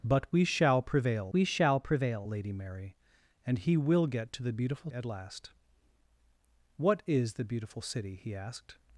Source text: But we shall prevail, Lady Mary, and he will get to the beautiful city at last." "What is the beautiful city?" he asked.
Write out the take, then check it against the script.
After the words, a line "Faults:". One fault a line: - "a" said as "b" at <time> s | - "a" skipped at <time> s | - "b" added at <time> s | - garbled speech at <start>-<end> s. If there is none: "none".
But we shall prevail we shall prevail, Lady Mary, and he will get to the beautiful at last." "What is the beautiful city?" he asked.
Faults:
- "we shall prevail" added at 1.3 s
- "city" skipped at 4.9 s